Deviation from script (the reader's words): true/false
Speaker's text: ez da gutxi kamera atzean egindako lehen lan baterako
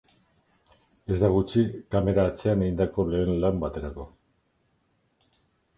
false